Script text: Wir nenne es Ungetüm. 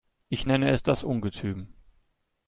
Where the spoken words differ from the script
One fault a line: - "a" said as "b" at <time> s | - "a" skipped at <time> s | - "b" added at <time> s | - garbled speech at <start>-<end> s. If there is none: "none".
- "Wir" said as "Ich" at 0.3 s
- "das" added at 0.8 s